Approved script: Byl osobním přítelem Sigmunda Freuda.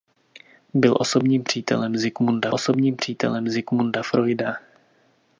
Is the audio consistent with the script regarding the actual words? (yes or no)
no